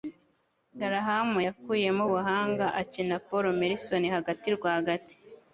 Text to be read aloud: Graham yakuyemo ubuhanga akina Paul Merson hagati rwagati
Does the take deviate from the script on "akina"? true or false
false